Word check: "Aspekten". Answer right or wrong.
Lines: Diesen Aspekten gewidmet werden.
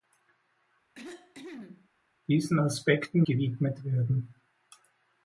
right